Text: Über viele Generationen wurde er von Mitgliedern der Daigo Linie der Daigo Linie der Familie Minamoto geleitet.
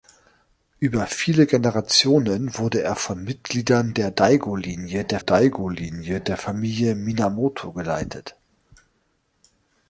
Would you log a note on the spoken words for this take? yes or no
no